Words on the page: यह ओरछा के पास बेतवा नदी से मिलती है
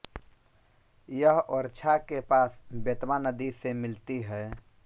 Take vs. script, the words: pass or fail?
pass